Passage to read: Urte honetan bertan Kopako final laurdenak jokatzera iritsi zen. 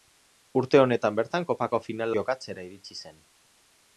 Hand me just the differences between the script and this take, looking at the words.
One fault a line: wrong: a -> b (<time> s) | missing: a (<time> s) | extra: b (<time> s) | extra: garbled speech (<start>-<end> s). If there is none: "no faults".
missing: laurdenak (2.2 s)